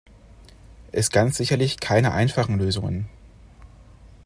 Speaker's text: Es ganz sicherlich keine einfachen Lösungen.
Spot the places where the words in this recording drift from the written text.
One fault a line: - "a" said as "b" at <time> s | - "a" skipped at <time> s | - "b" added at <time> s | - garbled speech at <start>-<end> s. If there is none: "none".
none